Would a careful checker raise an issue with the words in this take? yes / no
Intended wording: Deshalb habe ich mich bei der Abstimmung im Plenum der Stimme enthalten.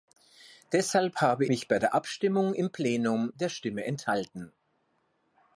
yes